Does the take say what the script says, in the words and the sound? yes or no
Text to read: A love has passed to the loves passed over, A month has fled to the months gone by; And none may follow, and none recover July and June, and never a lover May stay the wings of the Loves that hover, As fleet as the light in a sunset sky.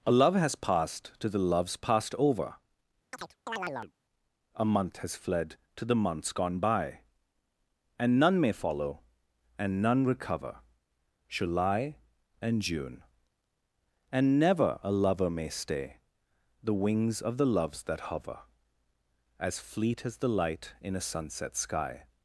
no